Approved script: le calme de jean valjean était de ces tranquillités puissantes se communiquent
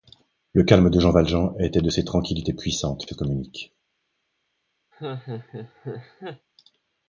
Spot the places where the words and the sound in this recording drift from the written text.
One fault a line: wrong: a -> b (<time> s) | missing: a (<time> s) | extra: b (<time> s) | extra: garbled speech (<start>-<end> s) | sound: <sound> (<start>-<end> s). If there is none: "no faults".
sound: laugh (4.9-6.5 s)